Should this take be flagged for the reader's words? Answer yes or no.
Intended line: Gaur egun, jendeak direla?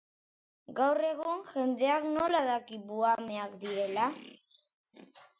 yes